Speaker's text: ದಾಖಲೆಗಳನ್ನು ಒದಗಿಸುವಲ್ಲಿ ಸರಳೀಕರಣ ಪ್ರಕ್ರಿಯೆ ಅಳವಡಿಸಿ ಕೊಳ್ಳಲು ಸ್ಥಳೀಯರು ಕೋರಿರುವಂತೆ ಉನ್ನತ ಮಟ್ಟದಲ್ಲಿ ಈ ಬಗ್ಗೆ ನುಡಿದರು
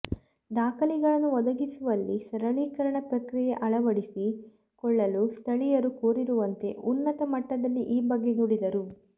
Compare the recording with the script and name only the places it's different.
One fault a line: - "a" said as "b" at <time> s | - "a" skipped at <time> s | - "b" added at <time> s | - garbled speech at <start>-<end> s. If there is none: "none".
none